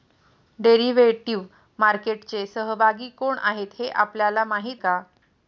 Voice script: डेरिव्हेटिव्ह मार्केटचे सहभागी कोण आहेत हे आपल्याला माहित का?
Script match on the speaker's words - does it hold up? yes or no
yes